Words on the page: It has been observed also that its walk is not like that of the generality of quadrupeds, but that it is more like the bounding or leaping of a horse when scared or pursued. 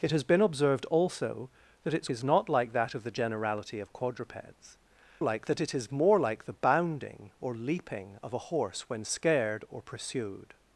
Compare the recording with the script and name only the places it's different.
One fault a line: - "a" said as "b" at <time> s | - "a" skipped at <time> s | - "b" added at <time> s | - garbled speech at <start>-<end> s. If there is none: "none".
- "walk" skipped at 2.1 s
- "but" said as "like" at 5.2 s